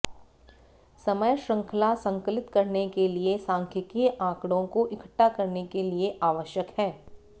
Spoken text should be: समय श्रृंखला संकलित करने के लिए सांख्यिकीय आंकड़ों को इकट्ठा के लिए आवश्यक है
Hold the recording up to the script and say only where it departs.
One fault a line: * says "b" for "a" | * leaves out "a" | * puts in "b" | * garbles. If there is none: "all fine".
* puts in "करने"